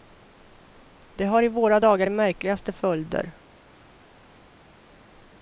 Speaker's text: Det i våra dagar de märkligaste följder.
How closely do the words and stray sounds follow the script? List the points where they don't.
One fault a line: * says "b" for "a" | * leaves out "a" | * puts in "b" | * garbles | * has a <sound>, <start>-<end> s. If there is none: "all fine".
* puts in "har"